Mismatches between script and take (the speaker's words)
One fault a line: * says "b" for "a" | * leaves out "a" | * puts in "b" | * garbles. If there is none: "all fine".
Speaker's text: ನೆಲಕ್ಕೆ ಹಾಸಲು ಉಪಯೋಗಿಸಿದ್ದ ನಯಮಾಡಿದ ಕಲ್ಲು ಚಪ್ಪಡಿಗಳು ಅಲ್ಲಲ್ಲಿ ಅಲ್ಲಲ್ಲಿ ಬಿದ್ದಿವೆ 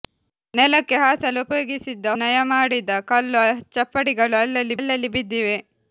all fine